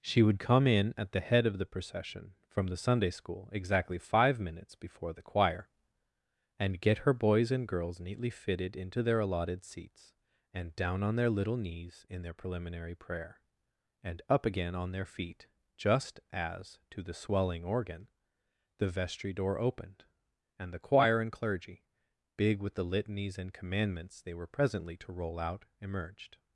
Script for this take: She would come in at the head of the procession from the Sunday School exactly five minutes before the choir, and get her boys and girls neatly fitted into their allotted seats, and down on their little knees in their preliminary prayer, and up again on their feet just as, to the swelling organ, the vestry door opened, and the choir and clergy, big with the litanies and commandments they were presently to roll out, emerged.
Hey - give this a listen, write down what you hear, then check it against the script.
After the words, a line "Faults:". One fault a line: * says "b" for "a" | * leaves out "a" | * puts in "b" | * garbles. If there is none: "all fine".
She would come in at the head of the procession from the Sunday School exactly five minutes before the choir, and get her boys and girls neatly fitted into their allotted seats, and down on their little knees in their preliminary prayer, and up again on their feet just as, to the swelling organ, the vestry door opened, and the choir and clergy, big with the litanies and commandments they were presently to roll out, emerged.
Faults:
all fine